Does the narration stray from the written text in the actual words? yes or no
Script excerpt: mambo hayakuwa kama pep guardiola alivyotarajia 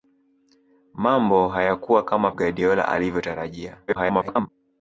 yes